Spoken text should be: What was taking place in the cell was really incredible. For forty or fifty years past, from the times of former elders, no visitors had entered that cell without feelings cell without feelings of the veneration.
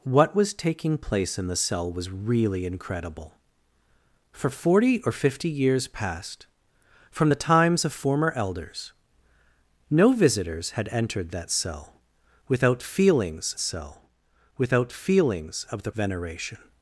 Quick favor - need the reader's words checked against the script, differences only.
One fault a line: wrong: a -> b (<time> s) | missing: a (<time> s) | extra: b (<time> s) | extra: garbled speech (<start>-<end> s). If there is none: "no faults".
no faults